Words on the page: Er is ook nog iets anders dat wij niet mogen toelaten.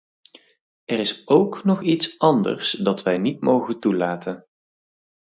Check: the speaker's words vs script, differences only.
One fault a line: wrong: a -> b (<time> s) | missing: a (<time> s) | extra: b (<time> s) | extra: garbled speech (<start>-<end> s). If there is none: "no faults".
no faults